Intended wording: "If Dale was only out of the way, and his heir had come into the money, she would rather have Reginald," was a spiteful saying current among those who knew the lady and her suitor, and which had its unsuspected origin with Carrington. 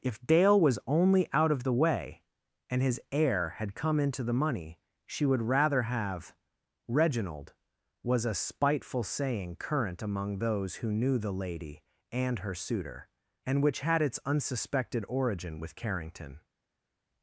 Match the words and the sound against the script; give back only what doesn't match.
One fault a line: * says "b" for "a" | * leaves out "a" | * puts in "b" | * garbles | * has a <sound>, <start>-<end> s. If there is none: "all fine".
all fine